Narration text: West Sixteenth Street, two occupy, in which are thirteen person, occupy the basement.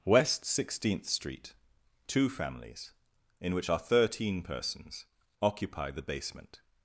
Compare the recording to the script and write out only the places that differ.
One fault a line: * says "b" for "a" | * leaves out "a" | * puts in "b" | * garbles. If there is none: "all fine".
* says "families" for "occupy"
* says "persons" for "person"